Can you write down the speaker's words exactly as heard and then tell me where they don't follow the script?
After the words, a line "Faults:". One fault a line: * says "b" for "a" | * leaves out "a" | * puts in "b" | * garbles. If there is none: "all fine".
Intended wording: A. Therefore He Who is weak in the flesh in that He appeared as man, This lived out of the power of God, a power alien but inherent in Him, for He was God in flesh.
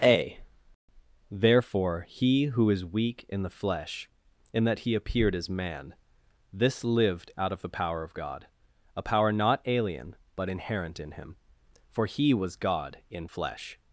A. Therefore He Who is weak in the flesh in that He appeared as man, This lived out of the power of God, a power not alien but inherent in Him, for He was God in flesh.
Faults:
* puts in "not"